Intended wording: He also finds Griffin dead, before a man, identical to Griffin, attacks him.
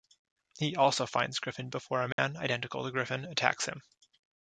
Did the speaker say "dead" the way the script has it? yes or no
no